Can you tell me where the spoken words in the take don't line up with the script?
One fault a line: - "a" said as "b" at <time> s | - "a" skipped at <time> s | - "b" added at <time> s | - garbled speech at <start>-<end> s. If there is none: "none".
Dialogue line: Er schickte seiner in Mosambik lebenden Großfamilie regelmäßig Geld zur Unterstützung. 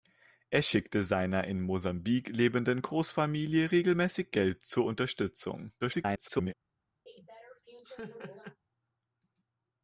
- garbled speech at 5.8-6.5 s